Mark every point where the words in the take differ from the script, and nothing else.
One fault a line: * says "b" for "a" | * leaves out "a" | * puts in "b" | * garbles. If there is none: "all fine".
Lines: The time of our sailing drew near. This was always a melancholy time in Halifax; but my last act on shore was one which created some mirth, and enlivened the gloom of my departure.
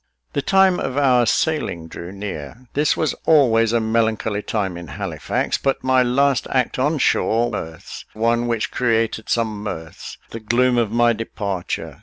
* says "mirth" for "was"
* leaves out "and enlivened"